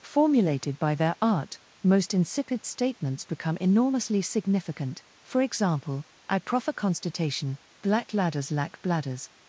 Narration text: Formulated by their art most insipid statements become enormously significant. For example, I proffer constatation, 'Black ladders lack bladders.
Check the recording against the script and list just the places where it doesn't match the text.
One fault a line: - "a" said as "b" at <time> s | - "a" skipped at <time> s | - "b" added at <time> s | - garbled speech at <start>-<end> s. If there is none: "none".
none